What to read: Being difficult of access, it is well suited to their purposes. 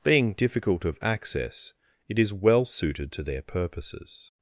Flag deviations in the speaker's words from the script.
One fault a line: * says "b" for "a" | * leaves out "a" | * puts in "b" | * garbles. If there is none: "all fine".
all fine